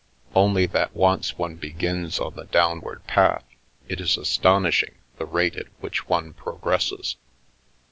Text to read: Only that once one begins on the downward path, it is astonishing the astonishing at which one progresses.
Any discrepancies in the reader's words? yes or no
yes